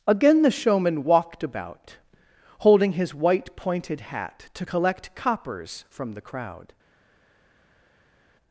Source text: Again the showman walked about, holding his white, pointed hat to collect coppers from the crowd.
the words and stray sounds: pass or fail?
pass